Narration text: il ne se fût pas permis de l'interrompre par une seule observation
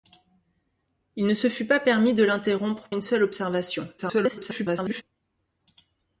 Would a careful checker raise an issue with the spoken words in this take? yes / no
yes